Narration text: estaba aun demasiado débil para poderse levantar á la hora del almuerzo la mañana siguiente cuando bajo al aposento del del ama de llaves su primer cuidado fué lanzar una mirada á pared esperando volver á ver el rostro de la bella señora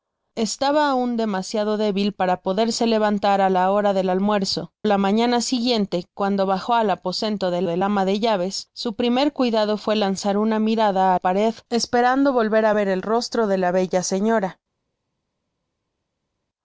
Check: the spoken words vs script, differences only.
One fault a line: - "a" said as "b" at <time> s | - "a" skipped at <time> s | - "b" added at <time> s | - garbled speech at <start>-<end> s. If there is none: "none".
none